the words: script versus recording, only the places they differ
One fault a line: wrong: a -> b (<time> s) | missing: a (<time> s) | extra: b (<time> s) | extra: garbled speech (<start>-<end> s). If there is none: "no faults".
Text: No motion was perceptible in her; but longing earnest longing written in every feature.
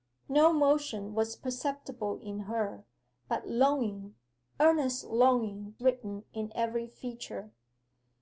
no faults